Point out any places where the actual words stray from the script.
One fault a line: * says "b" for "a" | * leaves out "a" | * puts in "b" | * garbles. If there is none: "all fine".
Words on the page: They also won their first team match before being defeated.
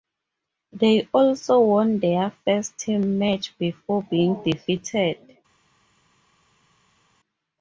all fine